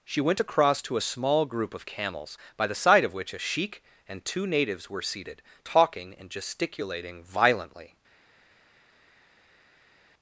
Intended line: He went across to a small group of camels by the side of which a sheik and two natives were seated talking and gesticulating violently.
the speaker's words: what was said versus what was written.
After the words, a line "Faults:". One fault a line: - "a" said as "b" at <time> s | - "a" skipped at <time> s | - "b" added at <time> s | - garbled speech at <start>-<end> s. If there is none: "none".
She went across to a small group of camels by the side of which a sheik and two natives were seated talking and gesticulating violently.
Faults:
- "He" said as "She" at 0.0 s